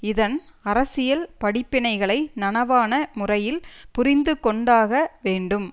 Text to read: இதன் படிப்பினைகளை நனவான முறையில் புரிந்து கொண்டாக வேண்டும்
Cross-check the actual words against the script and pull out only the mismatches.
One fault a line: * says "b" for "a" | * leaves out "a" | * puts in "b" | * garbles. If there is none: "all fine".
* puts in "அரசியல்"